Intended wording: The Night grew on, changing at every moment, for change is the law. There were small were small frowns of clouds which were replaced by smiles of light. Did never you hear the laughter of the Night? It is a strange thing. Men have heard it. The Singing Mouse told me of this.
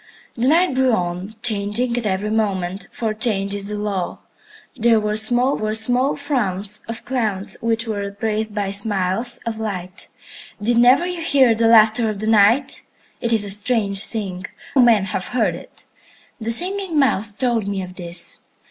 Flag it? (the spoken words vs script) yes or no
no